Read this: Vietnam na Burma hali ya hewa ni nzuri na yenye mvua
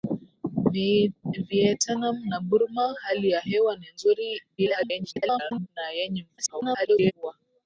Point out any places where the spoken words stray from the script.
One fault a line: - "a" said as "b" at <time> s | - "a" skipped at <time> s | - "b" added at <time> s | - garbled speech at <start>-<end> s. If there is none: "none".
- garbled speech at 4.6-5.7 s
- garbled speech at 6.4-7.1 s